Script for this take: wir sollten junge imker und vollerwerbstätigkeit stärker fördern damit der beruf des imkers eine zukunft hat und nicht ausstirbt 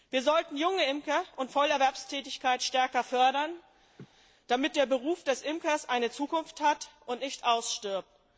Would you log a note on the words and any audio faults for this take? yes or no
yes